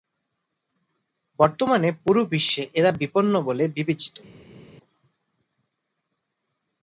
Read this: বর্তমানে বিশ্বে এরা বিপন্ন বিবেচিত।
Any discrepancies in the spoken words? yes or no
yes